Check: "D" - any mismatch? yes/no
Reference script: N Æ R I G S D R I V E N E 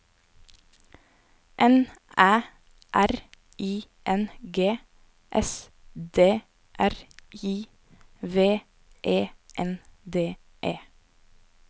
no